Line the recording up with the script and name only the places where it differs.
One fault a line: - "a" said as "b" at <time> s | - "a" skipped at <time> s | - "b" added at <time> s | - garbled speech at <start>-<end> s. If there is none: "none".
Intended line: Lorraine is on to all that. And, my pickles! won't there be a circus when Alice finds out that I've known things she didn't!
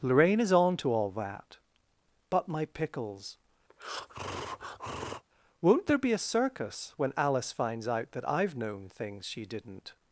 - "And" said as "But" at 2.3 s